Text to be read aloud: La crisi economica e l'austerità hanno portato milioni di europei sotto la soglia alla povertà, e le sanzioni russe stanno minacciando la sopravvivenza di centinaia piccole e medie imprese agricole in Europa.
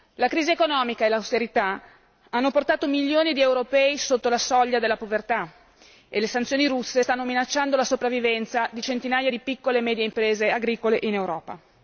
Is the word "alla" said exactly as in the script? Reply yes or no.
no